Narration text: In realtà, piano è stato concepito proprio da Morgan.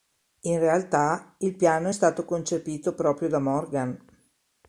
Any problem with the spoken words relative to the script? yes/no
yes